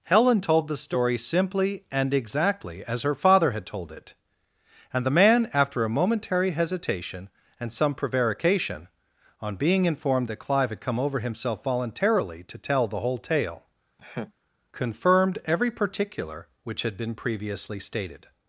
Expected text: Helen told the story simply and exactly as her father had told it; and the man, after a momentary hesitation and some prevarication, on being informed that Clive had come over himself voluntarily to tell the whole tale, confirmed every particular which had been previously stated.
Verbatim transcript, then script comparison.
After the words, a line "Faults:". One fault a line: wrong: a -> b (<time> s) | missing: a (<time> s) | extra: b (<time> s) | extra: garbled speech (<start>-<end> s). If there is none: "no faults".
Helen told the story simply and exactly as her father had told it; and the man, after a momentary hesitation and some prevarication, on being informed that Clive had come over himself voluntarily to tell the whole tale, confirmed every particular which had been previously stated.
Faults:
no faults